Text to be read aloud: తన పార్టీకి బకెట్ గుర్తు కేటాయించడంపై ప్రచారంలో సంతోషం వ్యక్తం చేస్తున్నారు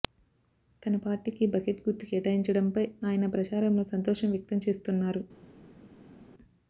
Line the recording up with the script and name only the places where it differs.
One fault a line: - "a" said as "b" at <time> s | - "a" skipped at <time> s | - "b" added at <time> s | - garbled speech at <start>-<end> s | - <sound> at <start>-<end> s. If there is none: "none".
- "ఆయన" added at 3.0 s